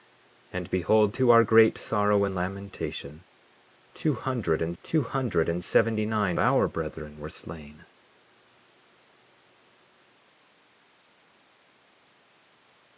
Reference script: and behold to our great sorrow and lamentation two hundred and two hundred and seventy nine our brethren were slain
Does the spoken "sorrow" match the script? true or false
true